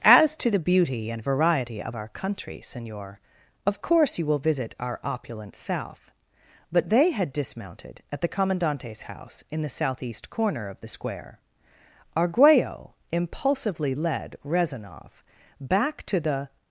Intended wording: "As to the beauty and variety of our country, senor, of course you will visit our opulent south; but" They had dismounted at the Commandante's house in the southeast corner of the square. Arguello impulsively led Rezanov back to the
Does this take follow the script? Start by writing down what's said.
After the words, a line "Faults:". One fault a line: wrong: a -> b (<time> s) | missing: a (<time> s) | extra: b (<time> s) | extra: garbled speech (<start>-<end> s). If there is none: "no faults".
"As to the beauty and variety of our country, senor, of course you will visit our opulent south; but" They had dismounted at the Commandante's house in the southeast corner of the square. Arguello impulsively led Rezanov back to the
Faults:
no faults